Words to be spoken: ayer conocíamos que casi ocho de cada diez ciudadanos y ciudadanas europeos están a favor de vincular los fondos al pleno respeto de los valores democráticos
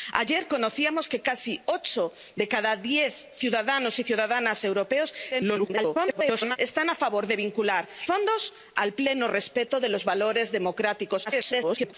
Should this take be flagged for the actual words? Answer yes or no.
yes